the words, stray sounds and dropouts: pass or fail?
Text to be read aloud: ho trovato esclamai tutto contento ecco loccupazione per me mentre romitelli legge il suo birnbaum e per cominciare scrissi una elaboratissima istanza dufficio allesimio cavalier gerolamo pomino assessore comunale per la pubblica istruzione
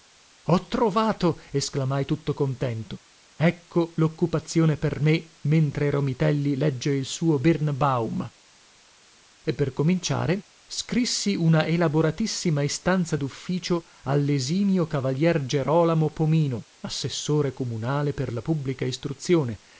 pass